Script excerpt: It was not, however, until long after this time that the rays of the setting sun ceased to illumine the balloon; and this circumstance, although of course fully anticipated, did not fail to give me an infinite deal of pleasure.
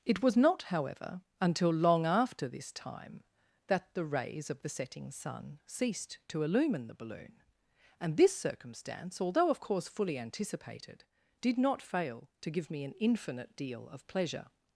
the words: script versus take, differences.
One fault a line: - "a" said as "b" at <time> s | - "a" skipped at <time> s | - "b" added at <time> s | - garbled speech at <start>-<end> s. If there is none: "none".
none